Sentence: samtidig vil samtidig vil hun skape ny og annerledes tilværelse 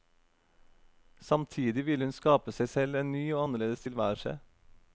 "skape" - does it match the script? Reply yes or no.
no